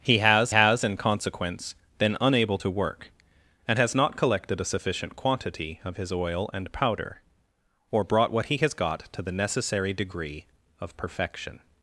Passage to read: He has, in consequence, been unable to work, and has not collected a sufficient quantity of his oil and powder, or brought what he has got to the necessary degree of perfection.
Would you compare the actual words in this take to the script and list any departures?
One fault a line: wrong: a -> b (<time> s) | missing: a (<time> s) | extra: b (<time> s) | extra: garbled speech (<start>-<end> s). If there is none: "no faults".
extra: has (0.5 s)